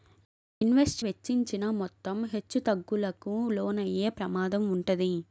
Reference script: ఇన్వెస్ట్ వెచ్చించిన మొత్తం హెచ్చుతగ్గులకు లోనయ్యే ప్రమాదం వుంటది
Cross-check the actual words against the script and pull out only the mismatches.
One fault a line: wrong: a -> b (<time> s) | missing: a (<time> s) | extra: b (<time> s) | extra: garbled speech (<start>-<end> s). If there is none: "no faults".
no faults